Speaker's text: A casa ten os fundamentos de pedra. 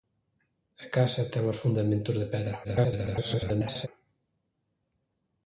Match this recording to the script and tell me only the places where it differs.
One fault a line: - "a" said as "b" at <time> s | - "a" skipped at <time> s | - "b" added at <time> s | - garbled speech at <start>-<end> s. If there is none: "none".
- garbled speech at 2.6-3.9 s